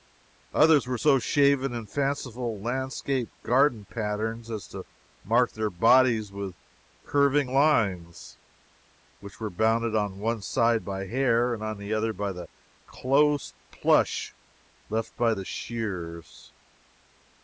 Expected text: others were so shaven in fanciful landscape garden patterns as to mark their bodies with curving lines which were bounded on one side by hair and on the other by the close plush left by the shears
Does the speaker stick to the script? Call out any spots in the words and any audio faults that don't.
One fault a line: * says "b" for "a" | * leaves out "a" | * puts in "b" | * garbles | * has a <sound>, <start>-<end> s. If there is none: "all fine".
all fine